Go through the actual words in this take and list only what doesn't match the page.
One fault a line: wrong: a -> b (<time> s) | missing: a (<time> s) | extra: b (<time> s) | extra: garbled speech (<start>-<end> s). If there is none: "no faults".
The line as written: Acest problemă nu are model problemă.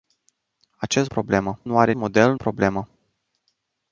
no faults